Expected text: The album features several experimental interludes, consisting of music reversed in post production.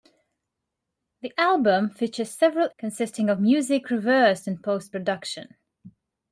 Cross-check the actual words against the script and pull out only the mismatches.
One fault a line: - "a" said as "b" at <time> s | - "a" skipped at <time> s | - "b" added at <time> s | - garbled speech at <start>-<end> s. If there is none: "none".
- "experimental interludes" skipped at 2.7 s